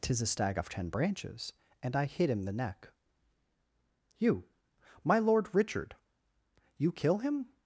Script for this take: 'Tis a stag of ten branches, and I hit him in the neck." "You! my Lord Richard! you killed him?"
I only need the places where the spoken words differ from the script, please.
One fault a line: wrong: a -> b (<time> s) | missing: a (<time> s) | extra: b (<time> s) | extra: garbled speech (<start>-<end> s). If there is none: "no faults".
missing: in (2.4 s)
wrong: killed -> kill (6.9 s)